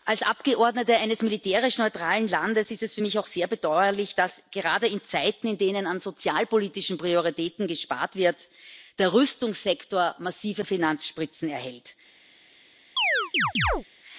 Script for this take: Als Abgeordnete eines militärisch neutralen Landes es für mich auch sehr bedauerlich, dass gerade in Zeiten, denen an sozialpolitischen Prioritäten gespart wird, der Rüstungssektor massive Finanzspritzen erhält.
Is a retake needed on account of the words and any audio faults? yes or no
yes